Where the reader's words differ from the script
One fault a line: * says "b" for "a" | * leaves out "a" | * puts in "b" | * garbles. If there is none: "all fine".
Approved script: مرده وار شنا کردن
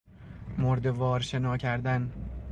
all fine